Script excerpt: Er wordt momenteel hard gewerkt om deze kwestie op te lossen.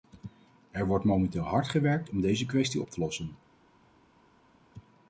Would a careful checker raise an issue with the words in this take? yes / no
no